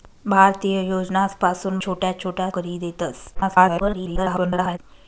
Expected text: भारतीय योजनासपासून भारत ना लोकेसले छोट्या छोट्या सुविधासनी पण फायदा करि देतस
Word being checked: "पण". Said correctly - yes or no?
no